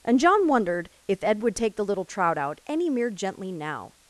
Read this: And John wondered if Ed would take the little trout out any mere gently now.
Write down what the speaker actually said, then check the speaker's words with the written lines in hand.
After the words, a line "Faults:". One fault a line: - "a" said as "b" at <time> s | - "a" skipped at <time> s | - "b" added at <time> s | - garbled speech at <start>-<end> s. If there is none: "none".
And John wondered if Ed would take the little trout out any mere gently now.
Faults:
none